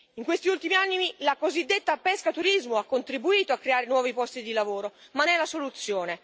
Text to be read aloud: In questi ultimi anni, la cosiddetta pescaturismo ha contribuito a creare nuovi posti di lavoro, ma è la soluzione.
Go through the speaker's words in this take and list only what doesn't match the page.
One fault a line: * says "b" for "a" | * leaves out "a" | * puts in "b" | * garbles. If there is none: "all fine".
all fine